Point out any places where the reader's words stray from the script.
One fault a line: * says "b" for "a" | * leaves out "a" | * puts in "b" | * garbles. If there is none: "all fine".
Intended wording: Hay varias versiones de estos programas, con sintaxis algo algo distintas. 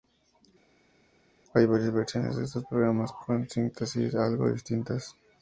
* leaves out "algo"